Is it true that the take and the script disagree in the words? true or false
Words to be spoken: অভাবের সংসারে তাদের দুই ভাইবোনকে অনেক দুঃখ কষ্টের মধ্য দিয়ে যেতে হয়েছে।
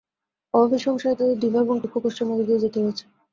true